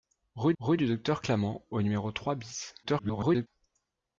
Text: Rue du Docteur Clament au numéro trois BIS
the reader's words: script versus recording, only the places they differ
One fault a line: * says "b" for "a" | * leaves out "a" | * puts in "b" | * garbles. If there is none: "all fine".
* puts in "rue"
* garbles